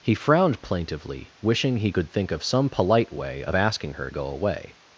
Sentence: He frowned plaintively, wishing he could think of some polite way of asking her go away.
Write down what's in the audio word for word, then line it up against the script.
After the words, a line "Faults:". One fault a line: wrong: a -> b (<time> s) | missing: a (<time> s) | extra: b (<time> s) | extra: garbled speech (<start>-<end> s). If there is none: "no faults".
He frowned plaintively, wishing he could think of some polite way of asking her go away.
Faults:
no faults